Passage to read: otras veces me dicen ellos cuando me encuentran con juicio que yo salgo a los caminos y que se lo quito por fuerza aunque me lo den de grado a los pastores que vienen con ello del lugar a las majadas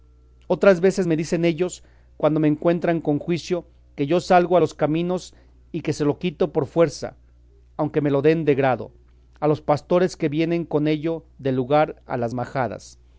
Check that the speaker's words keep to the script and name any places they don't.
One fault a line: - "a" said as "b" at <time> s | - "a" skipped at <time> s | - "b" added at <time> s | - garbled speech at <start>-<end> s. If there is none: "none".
none